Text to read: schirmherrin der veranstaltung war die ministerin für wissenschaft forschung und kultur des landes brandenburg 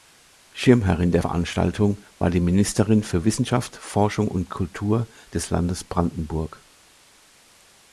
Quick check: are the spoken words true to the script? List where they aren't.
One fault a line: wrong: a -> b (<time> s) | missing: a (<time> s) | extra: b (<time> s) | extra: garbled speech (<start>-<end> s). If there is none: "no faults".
no faults